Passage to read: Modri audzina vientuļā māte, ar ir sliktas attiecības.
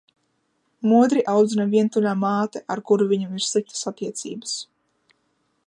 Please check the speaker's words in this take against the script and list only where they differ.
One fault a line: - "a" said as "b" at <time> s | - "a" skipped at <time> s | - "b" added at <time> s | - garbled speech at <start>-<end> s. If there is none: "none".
- "kuru viņam" added at 2.9 s